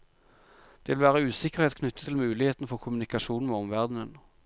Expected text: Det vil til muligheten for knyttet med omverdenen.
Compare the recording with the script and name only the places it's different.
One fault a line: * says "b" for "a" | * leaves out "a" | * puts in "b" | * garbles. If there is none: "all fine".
* puts in "være usikkerhet knyttet"
* says "kommunikasjon" for "knyttet"